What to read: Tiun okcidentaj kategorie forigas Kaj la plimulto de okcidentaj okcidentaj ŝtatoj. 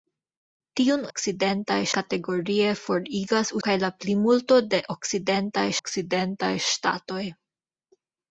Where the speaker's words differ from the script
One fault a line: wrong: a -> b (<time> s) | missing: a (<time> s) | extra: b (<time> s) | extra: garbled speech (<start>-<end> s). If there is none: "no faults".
no faults